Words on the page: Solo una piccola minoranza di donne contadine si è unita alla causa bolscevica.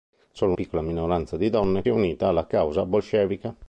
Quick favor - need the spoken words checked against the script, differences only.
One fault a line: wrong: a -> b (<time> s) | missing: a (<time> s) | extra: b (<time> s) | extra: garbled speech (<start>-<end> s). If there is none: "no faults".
missing: una (0.5 s)
missing: contadine si (1.8 s)